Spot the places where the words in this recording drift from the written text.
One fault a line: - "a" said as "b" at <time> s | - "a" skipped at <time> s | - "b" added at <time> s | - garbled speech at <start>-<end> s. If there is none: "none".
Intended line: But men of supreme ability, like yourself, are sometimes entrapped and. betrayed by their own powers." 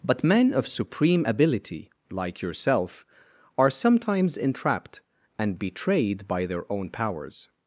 none